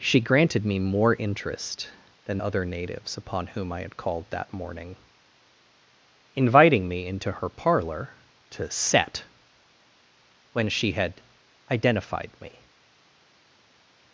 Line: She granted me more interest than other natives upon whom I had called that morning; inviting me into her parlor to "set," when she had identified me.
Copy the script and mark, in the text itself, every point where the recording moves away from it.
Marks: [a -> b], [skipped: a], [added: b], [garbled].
She granted me more interest than other natives upon whom I had called that morning; inviting me into her parlor to "set," when she had identified me.